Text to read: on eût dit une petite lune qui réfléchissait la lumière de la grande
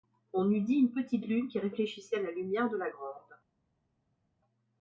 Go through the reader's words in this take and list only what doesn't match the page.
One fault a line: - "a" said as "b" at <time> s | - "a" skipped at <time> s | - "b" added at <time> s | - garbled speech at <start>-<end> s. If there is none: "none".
none